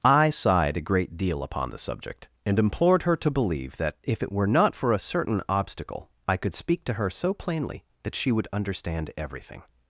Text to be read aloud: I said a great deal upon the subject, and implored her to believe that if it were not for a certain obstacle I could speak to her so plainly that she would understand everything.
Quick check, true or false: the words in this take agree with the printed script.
false